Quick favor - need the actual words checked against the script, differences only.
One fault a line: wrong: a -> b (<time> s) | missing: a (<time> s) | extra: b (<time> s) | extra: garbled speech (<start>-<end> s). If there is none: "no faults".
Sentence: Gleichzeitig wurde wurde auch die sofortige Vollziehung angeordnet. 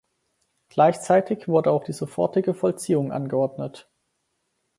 missing: wurde (1.7 s)